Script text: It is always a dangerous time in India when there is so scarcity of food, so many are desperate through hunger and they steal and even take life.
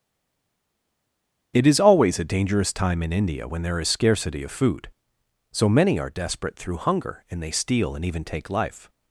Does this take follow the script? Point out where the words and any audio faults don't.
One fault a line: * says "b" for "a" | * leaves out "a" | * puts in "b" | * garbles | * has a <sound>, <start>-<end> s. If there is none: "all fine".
* leaves out "so"